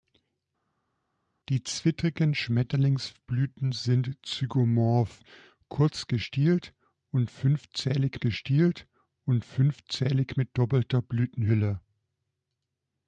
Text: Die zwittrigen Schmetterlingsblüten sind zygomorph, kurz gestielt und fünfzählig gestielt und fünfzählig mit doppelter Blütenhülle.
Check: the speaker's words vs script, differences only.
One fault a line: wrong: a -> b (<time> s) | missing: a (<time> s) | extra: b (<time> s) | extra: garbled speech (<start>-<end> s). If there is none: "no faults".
no faults